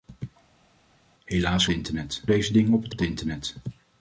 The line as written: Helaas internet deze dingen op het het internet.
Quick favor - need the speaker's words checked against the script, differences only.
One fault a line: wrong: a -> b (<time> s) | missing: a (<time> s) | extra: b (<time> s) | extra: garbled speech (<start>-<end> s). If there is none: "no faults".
no faults